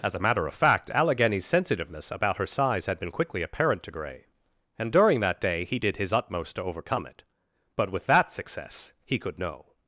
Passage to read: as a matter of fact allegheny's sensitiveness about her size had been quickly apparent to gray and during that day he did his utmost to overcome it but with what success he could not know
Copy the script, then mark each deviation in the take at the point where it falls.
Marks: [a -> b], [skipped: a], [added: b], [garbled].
as a matter of fact allegheny's sensitiveness about her size had been quickly apparent to gray and during that day he did his utmost to overcome it but with [what -> that] success he could [skipped: not] know